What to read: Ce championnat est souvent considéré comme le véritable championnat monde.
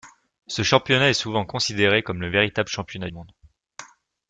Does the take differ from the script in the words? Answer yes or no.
no